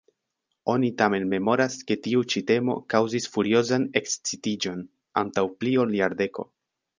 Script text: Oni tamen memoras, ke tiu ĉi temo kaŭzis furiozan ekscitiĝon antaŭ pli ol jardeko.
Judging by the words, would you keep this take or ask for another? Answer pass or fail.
pass